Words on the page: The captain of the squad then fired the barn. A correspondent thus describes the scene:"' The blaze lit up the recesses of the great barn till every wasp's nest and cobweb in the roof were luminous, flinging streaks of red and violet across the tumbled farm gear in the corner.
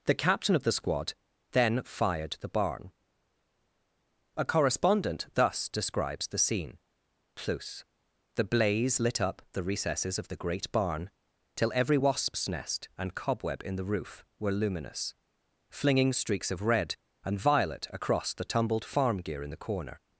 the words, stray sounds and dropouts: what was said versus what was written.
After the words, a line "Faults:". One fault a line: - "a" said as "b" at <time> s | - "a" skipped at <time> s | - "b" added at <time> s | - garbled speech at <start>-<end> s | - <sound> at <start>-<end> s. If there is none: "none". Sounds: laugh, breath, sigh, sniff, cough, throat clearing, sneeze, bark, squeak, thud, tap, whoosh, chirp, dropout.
The captain of the squad then fired the barn. A correspondent thus describes the scene:"' plus The blaze lit up the recesses of the great barn till every wasp's nest and cobweb in the roof were luminous, flinging streaks of red and violet across the tumbled farm gear in the corner.
Faults:
- "plus" added at 7.4 s